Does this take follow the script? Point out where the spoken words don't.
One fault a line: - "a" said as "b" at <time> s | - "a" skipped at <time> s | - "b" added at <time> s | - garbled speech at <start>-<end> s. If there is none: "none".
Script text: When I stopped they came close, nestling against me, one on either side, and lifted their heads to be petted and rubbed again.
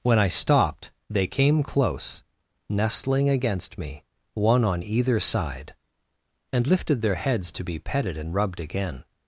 none